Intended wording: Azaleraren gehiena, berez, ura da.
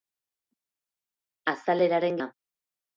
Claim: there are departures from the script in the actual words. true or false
true